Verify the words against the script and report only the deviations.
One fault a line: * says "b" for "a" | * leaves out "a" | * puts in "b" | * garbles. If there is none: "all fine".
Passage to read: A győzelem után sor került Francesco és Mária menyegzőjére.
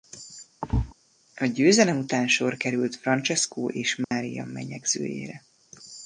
all fine